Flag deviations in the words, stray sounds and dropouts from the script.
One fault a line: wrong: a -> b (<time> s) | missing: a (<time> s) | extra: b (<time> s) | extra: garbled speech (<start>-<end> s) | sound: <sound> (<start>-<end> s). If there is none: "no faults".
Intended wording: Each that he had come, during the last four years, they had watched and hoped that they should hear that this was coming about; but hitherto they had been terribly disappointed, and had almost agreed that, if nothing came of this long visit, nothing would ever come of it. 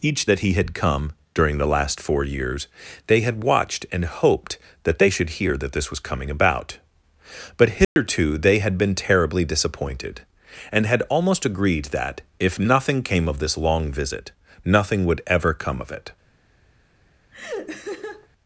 sound: dropout (7.8-8.0 s)
sound: laugh (17.3-18.3 s)